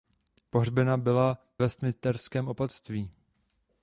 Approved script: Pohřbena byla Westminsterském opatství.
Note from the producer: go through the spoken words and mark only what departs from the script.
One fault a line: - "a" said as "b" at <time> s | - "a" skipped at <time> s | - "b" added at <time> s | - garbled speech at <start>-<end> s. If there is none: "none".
none